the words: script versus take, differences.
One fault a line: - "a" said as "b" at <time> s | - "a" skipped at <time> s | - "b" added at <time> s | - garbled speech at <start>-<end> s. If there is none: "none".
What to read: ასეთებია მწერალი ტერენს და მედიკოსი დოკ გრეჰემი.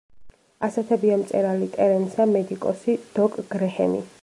none